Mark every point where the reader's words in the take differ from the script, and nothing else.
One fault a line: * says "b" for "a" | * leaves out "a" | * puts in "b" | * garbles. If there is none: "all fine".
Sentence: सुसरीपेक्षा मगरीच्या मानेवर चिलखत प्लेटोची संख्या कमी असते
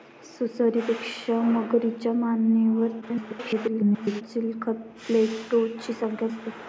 * garbles
* leaves out "कमी"